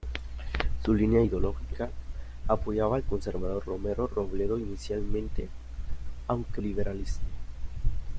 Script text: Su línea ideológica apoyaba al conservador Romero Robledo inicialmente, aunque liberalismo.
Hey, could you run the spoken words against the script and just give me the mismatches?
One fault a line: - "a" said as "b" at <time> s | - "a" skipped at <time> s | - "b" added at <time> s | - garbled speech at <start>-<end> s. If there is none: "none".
none